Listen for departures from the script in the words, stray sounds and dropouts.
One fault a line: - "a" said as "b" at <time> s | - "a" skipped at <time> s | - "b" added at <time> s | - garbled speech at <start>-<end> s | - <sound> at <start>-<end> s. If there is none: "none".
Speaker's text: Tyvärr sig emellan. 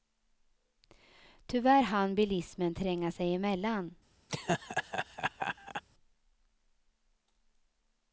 - "hann bilismen tränga" added at 1.8 s
- laugh at 4.3-5.8 s